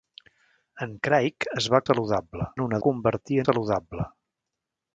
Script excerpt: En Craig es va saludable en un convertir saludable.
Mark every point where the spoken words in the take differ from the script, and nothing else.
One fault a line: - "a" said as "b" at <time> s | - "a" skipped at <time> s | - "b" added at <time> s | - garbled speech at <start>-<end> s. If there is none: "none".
none